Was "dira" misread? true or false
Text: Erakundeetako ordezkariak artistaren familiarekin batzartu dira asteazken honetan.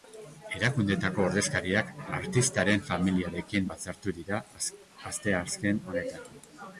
false